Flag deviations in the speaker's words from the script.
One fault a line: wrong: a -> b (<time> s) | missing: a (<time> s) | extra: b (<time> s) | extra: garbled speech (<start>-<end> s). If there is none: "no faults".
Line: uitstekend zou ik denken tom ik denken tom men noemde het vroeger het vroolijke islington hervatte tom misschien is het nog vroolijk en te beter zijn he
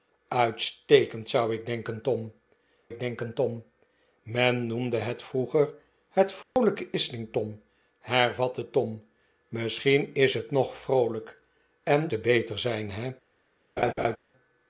no faults